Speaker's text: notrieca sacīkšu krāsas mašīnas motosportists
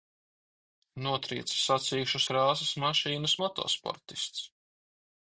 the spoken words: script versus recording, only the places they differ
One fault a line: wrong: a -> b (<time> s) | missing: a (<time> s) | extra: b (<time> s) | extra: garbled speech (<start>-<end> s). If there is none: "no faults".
no faults